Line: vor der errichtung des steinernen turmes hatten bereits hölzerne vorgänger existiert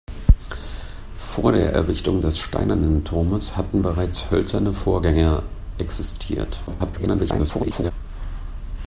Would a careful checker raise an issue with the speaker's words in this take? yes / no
yes